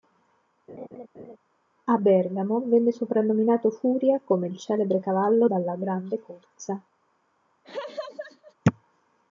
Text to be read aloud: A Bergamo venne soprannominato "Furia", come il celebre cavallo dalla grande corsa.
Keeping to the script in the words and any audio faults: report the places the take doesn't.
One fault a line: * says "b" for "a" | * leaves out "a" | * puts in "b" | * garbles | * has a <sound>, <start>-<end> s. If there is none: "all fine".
* has a laugh, 0.7-1.4 s
* has a laugh, 7.6-8.5 s